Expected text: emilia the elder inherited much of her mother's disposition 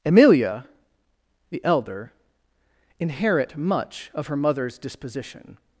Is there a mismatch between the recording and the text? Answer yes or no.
yes